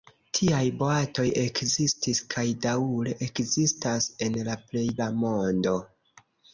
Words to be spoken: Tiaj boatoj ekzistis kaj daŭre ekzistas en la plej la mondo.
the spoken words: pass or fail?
pass